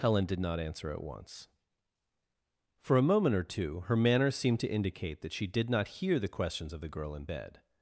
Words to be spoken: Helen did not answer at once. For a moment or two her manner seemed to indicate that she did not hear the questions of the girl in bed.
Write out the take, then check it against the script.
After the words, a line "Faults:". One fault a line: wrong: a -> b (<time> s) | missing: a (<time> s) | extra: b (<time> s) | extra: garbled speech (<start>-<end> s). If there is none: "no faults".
Helen did not answer at once. For a moment or two her manner seemed to indicate that she did not hear the questions of the girl in bed.
Faults:
no faults